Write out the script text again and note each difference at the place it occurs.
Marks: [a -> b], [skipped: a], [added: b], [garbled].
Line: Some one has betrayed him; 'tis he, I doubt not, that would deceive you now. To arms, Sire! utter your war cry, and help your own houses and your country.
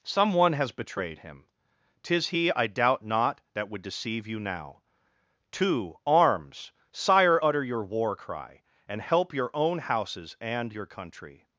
Some one has betrayed him; 'tis he, I doubt not, that would deceive you now. To arms, Sire! utter your war cry, and help your own houses and your country.